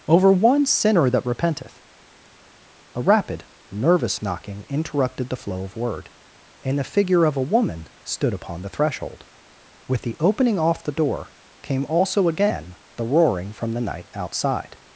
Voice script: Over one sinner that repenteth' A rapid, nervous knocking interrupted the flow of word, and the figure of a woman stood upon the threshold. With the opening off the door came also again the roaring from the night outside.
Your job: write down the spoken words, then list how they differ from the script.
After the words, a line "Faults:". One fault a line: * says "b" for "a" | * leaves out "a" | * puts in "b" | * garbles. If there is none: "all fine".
Over one sinner that repenteth' A rapid, nervous knocking interrupted the flow of word, and the figure of a woman stood upon the threshold. With the opening off the door came also again the roaring from the night outside.
Faults:
all fine